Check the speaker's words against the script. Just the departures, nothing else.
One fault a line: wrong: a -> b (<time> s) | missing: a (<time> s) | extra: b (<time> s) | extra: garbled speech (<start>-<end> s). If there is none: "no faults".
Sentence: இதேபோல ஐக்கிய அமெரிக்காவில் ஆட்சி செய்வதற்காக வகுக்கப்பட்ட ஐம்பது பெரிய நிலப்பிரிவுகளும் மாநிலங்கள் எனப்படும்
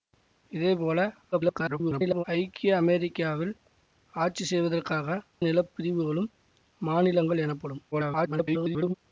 extra: garbled speech (1.3-2.2 s)
missing: வகுக்கப்பட்ட ஐம்பது பெரிய (5.1 s)
extra: garbled speech (7.9-8.9 s)